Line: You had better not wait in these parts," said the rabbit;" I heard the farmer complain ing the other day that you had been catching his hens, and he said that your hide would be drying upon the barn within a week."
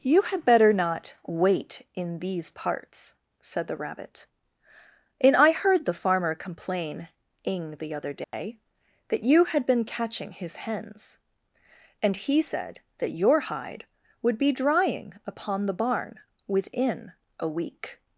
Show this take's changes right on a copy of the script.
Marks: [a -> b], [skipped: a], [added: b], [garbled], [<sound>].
You had better not wait in these parts," said the rabbit;" [added: and] I heard the farmer complain ing the other day [dropout] that you had been catching his hens, and he said that your hide would be drying upon the barn within a week."